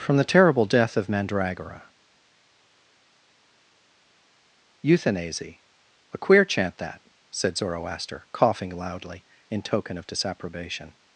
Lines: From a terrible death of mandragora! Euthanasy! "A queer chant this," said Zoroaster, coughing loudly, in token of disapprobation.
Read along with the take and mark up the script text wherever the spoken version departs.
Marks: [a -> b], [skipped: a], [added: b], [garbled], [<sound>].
From [a -> the] terrible death of mandragora! Euthanasy! "A queer chant [this," -> that] said Zoroaster, coughing loudly, in token of disapprobation.